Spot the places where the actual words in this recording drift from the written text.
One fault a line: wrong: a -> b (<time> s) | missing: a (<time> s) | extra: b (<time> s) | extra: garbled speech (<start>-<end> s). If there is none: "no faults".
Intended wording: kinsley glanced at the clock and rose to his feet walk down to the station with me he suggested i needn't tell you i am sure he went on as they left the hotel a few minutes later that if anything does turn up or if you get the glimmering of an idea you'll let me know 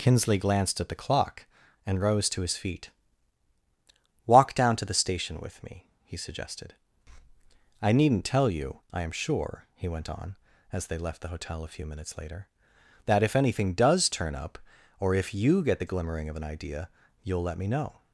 no faults